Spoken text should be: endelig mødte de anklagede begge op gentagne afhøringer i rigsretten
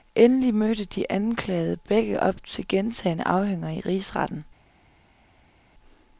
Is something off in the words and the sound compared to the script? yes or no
yes